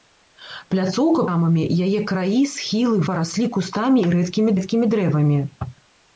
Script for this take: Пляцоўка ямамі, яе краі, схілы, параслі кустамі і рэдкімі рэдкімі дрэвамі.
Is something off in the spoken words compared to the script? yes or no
no